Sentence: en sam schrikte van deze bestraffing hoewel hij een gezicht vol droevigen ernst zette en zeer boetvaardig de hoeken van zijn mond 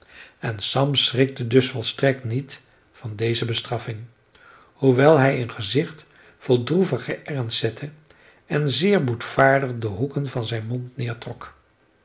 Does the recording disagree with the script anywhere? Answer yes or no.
yes